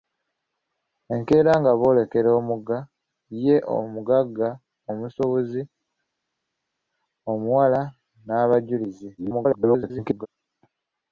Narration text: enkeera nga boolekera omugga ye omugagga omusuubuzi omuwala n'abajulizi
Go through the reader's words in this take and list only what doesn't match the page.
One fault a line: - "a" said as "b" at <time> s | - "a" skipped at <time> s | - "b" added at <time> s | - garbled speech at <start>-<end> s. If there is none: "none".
- garbled speech at 9.2-10.3 s